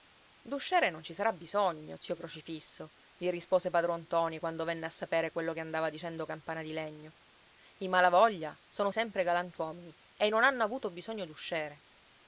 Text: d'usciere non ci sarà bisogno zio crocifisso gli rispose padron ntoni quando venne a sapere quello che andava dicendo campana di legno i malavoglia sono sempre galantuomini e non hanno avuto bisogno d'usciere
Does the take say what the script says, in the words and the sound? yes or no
yes